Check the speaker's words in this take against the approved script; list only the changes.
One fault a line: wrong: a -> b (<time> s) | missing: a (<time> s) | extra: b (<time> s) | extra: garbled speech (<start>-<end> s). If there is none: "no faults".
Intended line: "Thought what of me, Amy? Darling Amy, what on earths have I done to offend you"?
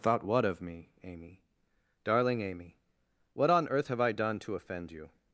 wrong: earths -> earth (3.7 s)